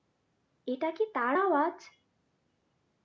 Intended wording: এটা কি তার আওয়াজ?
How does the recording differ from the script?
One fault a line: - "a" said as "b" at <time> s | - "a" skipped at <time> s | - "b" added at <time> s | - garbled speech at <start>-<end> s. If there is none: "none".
none